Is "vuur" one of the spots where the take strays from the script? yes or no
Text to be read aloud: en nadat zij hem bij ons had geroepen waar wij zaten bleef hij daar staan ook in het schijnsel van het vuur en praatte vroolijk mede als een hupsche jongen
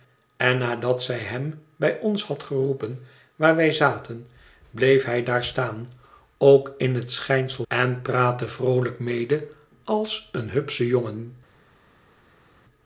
yes